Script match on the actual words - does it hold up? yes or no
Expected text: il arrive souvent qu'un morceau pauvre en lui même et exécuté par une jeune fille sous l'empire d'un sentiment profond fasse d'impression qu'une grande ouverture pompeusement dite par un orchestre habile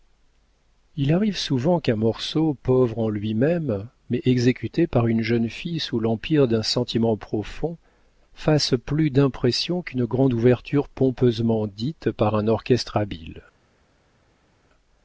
no